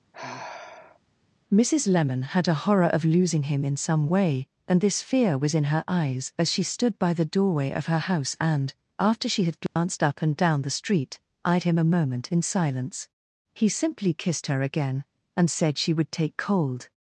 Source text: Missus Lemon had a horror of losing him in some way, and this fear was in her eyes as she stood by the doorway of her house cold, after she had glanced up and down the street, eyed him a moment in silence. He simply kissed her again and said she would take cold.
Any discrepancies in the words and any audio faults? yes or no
yes